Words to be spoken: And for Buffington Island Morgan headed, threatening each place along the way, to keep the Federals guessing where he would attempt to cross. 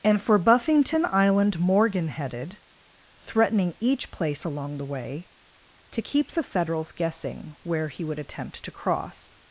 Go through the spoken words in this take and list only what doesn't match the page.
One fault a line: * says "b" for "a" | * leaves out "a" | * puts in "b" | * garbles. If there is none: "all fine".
all fine